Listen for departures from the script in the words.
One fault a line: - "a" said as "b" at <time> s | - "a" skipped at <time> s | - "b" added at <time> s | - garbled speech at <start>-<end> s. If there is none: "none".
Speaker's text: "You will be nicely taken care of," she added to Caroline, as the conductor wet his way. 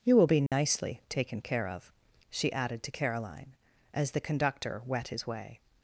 none